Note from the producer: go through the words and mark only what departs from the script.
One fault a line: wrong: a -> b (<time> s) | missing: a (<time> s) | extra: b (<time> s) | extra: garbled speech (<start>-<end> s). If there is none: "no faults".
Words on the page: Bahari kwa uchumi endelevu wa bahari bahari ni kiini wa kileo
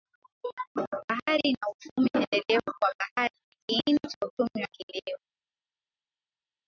wrong: kwa -> na (1.5 s)
missing: bahari (3.3 s)
extra: cha uchumi (4.0 s)